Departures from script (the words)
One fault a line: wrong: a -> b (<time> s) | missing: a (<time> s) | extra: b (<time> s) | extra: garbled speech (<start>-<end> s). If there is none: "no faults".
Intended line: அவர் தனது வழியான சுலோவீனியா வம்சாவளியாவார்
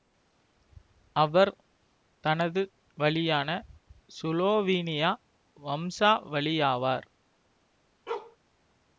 no faults